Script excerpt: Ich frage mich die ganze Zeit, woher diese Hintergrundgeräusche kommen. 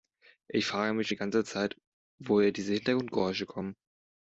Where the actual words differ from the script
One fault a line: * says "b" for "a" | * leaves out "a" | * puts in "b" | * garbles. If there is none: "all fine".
all fine